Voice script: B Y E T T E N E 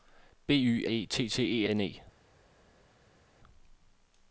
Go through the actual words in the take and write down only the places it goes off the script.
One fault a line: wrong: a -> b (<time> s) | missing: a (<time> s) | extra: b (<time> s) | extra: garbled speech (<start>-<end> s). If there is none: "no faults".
no faults